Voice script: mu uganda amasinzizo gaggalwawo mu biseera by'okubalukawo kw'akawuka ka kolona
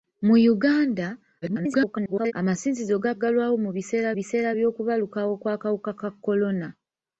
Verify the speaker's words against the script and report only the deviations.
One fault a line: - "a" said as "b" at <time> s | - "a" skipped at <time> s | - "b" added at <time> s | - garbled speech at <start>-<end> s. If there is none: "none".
- garbled speech at 1.4-2.3 s
- "biseera" added at 4.2 s